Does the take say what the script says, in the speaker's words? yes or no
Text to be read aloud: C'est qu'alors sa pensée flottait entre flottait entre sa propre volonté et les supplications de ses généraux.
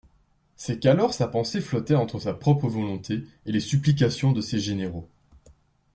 no